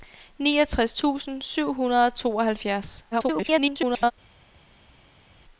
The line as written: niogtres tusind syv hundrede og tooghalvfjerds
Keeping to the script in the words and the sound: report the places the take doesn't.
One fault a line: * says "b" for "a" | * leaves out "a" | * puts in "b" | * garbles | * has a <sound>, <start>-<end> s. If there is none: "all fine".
* garbles